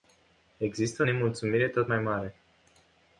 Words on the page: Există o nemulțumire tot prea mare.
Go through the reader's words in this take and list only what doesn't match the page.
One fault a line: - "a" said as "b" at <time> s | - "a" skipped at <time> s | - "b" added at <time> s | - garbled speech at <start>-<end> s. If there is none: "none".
- "prea" said as "mai" at 1.9 s